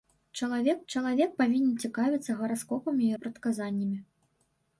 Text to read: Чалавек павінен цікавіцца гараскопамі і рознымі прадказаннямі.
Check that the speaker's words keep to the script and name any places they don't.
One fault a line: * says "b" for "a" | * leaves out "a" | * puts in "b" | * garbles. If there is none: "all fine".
* puts in "чалавек"
* leaves out "рознымі"